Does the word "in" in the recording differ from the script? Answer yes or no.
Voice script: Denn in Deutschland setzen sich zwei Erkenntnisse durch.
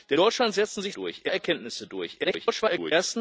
yes